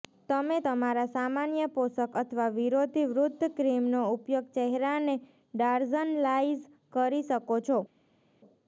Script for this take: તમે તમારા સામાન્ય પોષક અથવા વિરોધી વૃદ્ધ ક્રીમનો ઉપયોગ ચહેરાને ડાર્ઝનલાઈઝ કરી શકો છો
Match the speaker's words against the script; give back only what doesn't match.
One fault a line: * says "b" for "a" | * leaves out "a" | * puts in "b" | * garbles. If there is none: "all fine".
all fine